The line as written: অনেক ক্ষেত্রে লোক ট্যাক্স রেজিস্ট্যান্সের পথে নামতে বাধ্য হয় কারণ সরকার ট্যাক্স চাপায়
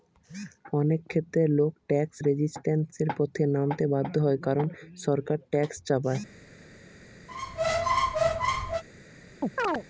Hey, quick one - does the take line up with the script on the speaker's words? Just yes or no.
yes